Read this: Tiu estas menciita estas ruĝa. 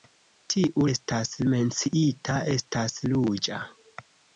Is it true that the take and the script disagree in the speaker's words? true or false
false